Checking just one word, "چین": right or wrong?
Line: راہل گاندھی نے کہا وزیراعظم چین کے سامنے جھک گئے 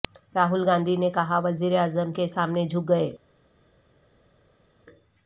wrong